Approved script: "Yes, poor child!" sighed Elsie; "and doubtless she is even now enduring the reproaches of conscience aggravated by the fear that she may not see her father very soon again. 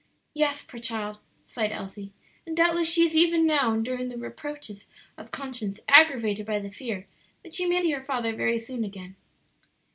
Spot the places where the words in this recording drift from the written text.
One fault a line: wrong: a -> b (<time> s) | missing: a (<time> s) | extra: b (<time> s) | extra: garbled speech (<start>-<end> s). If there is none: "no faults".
missing: not (7.8 s)